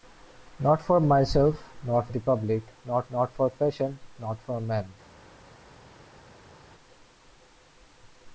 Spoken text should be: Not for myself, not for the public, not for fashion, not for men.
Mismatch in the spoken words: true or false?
true